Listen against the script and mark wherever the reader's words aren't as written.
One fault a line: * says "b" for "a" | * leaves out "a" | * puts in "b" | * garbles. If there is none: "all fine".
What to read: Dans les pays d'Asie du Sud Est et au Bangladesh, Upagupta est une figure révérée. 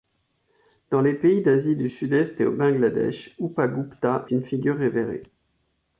* leaves out "est"